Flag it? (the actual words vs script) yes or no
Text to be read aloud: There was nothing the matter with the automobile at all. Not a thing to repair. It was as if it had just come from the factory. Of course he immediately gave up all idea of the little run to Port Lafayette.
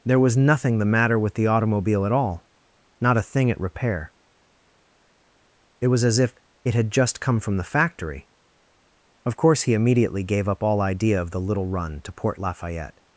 yes